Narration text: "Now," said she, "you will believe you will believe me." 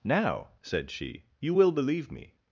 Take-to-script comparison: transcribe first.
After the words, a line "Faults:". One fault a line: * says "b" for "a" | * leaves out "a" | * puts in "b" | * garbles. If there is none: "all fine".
"Now," said she, "you will believe me."
Faults:
* leaves out "you will believe"